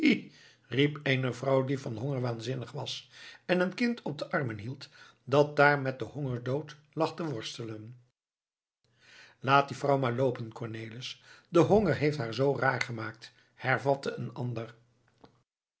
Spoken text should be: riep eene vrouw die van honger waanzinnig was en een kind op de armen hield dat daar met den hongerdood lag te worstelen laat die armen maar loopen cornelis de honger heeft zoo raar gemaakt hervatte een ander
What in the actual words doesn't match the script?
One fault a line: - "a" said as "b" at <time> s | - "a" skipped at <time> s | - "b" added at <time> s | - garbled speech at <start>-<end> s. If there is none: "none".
- "armen" said as "vrouw" at 9.8 s
- "haar" added at 12.2 s